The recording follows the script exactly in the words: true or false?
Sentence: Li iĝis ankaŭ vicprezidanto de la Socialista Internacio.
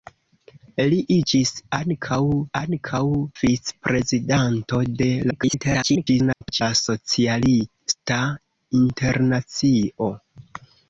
false